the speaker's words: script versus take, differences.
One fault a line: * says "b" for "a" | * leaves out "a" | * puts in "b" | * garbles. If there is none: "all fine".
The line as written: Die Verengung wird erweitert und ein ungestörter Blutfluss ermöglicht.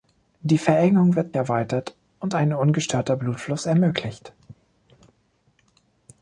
all fine